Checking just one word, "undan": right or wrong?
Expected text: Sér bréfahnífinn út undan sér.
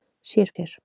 wrong